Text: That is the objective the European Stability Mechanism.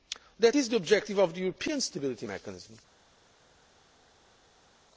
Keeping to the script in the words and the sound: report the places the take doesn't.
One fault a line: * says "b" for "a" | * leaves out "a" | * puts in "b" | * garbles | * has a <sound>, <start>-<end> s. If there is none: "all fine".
* puts in "of"